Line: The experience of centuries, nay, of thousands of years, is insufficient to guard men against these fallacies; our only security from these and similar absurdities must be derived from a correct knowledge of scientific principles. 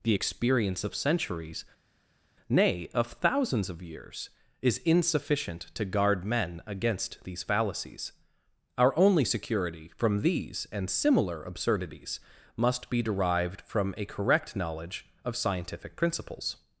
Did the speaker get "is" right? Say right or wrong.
right